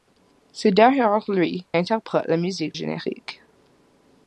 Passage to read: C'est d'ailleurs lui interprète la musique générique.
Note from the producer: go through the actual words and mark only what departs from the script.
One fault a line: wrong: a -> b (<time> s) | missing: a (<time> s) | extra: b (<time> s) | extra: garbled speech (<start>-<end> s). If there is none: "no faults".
no faults